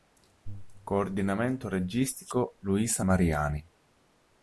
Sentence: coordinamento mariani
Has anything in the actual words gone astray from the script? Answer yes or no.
yes